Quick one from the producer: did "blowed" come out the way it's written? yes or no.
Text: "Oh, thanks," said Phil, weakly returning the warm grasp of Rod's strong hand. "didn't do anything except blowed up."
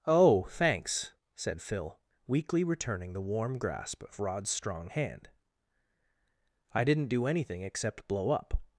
no